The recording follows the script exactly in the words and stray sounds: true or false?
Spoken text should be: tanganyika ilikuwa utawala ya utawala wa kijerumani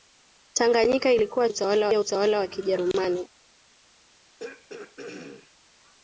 false